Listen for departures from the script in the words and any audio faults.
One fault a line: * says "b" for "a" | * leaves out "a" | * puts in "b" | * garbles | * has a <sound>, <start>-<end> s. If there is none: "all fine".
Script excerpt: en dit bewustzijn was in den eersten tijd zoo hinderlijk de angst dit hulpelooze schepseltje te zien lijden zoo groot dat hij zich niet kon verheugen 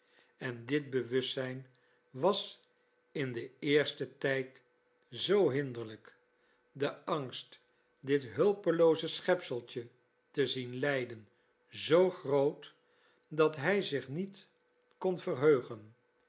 all fine